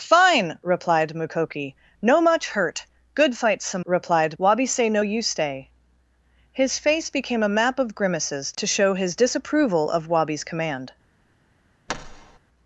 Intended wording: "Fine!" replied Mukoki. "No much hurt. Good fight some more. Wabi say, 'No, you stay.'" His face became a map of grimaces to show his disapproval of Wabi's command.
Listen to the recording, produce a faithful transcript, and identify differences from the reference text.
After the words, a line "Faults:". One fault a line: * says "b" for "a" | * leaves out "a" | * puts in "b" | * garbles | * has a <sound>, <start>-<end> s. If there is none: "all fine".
"Fine!" replied Mukoki. "No much hurt. Good fight some replied. Wabi say, 'No, you stay.'" His face became a map of grimaces to show his disapproval of Wabi's command.
Faults:
* says "replied" for "more"
* has a thud, 11.9-12.4 s